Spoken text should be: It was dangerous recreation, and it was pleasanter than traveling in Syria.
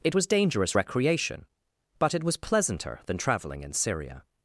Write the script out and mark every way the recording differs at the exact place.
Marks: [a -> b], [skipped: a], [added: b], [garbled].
It was dangerous recreation, [and -> but] it was pleasanter than traveling in Syria.